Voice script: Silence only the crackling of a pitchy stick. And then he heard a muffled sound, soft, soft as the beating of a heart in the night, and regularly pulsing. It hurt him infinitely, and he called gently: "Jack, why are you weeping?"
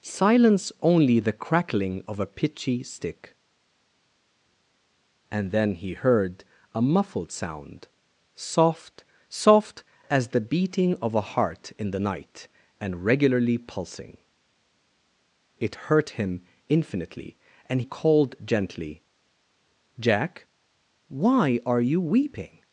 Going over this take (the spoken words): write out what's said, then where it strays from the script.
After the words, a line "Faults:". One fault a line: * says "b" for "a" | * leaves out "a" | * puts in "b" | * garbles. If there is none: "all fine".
Silence only the crackling of a pitchy stick. And then he heard a muffled sound, soft, soft as the beating of a heart in the night, and regularly pulsing. It hurt him infinitely, and called gently: "Jack, why are you weeping?"
Faults:
* leaves out "he"